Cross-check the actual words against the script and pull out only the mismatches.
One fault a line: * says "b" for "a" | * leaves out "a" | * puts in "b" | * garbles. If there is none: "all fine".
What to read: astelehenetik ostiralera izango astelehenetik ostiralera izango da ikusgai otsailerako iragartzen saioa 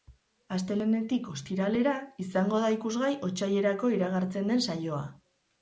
* leaves out "astelehenetik ostiralera izango"
* puts in "den"